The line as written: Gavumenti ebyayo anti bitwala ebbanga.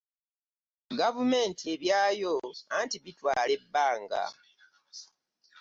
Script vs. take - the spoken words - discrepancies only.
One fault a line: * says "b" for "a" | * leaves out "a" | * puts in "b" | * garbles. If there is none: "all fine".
all fine